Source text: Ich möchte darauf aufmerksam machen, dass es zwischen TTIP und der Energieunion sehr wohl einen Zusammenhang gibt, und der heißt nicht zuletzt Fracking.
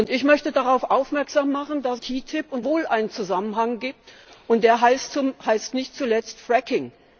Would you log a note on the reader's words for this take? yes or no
yes